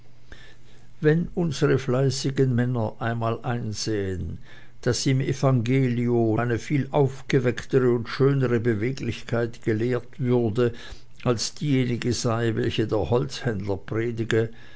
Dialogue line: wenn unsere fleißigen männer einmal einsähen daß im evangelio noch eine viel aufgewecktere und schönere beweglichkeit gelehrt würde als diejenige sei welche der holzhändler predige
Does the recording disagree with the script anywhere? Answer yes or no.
yes